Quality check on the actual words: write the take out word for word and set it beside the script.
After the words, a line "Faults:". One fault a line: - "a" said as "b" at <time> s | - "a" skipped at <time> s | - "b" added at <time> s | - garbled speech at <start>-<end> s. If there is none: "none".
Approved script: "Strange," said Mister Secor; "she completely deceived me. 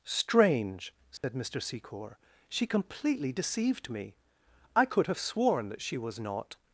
"Strange," said Mister Secor; "she completely deceived me. I could have sworn that she was not
Faults:
- "I could have sworn that she was not" added at 4.7 s